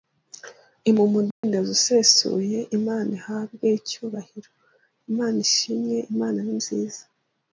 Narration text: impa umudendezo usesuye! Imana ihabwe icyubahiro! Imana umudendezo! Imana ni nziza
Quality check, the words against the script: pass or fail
fail